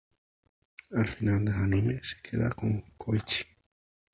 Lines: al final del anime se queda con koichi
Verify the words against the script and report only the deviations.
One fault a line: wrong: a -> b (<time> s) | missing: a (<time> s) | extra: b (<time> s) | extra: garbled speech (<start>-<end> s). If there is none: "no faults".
no faults